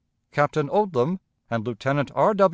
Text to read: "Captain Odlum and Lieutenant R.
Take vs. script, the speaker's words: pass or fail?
pass